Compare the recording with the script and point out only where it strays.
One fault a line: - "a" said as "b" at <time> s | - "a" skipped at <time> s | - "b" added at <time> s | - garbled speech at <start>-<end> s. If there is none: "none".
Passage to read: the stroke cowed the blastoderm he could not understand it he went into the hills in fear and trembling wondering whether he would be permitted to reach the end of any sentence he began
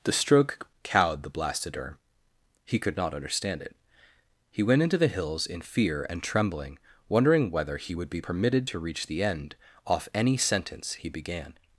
- "of" said as "off" at 9.9 s